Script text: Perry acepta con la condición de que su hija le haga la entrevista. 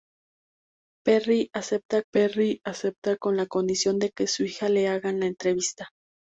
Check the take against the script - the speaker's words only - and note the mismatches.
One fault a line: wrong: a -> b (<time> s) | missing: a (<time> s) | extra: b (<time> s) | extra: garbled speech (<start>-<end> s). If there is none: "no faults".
extra: perry acepta (2.1 s)